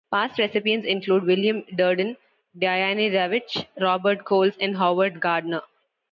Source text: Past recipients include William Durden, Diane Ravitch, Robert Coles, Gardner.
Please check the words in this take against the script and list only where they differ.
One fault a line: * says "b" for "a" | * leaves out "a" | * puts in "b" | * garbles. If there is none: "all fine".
* puts in "and Howard"